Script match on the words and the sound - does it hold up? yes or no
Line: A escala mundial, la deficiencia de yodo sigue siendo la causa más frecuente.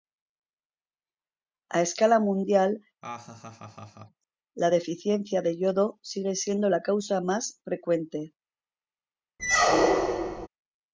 no